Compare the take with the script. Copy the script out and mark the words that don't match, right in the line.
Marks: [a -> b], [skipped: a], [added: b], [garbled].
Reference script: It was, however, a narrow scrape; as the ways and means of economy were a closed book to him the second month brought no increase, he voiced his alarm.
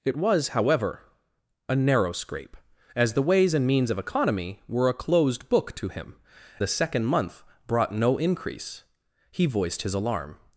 It was, however, a narrow scrape; as the ways and means of economy were a closed book to him the second month brought no increase, he voiced his alarm.